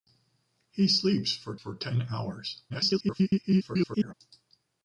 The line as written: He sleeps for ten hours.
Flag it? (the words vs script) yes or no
yes